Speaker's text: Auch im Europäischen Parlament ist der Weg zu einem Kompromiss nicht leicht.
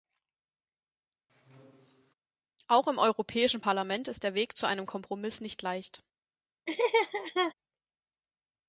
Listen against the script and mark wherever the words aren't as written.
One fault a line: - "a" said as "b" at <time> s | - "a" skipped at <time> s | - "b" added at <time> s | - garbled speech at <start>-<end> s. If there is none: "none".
none